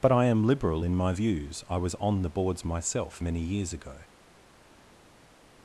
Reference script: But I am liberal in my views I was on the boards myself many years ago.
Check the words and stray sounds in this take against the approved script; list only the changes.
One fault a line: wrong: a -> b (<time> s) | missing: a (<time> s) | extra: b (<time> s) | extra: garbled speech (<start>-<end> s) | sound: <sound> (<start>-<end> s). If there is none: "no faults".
no faults